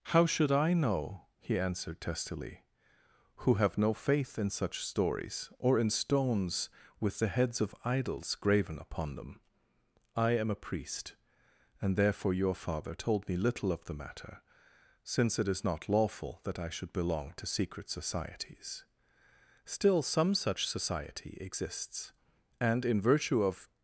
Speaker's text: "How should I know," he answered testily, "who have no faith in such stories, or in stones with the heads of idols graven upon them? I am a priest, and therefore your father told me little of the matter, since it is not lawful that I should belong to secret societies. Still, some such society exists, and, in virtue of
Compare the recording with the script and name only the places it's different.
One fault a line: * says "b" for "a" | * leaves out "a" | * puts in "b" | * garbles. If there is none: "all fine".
all fine